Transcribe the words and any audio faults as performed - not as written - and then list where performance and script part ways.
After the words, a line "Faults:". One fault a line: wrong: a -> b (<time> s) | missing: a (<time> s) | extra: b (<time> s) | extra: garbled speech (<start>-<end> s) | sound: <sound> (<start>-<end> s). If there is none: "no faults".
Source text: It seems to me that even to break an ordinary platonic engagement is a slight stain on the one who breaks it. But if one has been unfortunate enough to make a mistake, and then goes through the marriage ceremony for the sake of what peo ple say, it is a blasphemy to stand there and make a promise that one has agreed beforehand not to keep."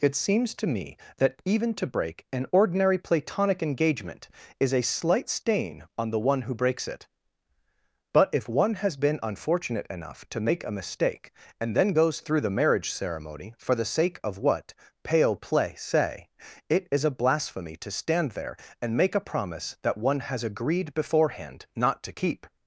It seems to me that even to break an ordinary platonic engagement is a slight stain on the one who breaks it. But if one has been unfortunate enough to make a mistake, and then goes through the marriage ceremony for the sake of what pale play say, it is a blasphemy to stand there and make a promise that one has agreed beforehand not to keep."
Faults:
wrong: peo ple -> pale play (15.0 s)